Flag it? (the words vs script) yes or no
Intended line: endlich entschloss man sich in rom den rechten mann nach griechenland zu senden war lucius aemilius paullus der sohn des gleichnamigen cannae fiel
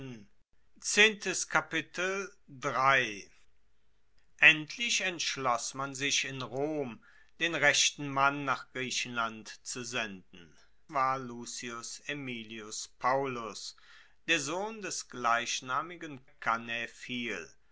no